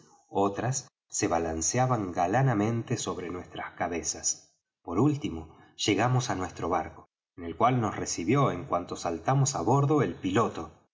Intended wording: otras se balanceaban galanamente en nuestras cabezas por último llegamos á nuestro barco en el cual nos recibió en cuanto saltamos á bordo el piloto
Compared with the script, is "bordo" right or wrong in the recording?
right